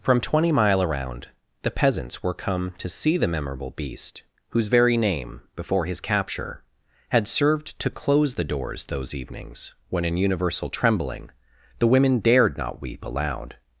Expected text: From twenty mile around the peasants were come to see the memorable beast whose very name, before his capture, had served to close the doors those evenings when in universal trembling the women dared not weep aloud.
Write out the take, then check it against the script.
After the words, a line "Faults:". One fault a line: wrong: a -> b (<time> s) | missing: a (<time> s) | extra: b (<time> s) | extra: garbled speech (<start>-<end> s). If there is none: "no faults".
From twenty mile around the peasants were come to see the memorable beast whose very name, before his capture, had served to close the doors those evenings when in universal trembling the women dared not weep aloud.
Faults:
no faults